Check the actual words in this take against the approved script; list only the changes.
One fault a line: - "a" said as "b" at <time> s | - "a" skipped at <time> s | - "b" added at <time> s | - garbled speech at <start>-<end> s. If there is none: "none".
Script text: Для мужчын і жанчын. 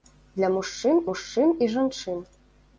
- "мужчын" added at 1.1 s